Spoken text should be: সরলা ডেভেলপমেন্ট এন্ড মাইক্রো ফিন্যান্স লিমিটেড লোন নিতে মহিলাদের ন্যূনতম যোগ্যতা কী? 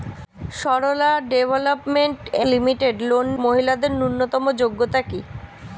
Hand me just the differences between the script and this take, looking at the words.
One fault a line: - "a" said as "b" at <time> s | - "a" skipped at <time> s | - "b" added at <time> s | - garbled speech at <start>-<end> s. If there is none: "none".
- "এন্ড মাইক্রো ফিন্যান্স" skipped at 2.2 s
- "নিতে" skipped at 3.3 s